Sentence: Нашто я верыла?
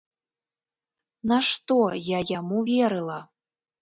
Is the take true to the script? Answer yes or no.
no